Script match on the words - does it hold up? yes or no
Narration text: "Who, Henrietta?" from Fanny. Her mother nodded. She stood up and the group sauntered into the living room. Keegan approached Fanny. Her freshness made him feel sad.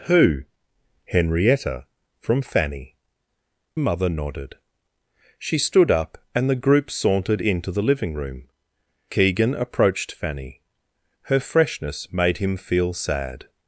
no